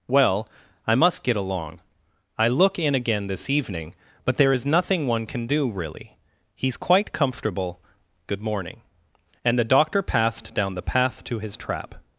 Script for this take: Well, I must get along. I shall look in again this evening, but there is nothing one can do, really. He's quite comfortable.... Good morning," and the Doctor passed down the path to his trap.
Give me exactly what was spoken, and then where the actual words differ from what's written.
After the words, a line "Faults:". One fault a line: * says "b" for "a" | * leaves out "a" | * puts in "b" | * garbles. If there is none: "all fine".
Well, I must get along. I look in again this evening, but there is nothing one can do, really. He's quite comfortable.... Good morning," and the Doctor passed down the path to his trap.
Faults:
* leaves out "shall"